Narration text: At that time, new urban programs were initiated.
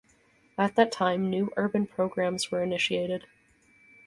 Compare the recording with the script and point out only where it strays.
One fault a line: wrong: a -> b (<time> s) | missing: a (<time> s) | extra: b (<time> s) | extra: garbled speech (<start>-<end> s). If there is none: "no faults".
no faults